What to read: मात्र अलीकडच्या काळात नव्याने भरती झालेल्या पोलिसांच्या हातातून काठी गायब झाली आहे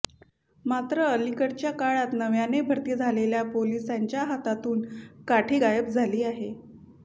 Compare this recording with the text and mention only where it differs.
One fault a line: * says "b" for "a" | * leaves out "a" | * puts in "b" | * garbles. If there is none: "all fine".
all fine